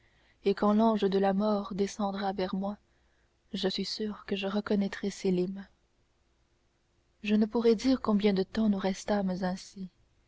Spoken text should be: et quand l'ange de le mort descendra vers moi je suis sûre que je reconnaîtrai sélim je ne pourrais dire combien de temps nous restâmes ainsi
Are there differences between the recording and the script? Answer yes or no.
yes